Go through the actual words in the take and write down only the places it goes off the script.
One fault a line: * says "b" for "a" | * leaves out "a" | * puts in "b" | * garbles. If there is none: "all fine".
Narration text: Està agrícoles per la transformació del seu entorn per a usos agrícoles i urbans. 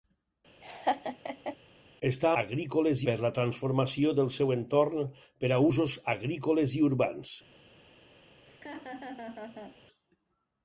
all fine